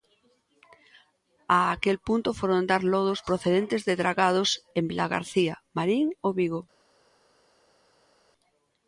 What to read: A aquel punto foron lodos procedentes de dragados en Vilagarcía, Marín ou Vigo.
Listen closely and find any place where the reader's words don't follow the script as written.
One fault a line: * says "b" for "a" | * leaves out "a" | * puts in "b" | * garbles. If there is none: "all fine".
* puts in "dar"